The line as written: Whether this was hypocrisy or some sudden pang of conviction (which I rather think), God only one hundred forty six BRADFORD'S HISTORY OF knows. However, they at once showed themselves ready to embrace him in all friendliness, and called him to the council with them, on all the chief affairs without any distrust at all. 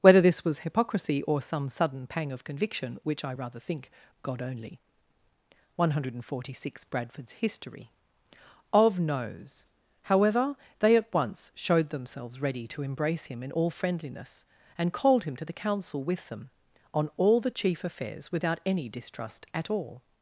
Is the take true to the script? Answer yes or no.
yes